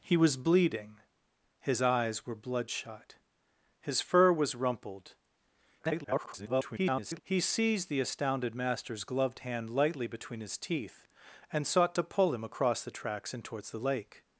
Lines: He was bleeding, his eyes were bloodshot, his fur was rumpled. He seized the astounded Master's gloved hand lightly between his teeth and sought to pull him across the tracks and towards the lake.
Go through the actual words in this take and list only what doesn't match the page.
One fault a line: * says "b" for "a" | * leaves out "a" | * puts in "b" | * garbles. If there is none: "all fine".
* garbles